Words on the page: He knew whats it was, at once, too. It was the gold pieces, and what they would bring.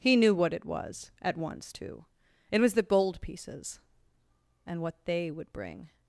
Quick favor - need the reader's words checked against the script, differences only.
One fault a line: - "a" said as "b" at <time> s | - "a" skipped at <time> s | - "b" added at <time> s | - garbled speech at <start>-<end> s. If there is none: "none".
- "whats" said as "what" at 0.3 s